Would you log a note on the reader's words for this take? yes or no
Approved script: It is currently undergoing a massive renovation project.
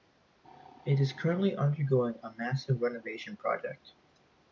no